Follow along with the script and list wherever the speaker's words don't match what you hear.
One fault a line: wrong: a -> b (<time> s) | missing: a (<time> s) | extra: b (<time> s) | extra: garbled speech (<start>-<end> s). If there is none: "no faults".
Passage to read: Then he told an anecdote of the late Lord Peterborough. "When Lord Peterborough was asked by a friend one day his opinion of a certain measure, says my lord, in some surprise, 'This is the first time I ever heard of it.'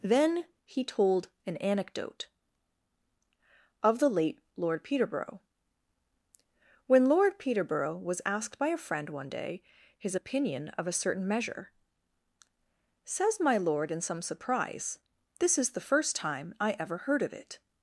no faults